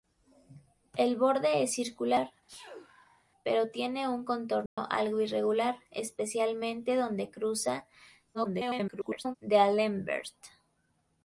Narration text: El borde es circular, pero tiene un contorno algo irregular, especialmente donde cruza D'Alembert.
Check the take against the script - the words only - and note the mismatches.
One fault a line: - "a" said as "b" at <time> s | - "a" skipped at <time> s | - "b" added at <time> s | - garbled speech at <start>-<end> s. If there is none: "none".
- garbled speech at 8.3-9.4 s